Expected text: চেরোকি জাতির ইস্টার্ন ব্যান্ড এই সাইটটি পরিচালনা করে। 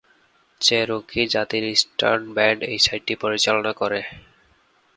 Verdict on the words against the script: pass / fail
pass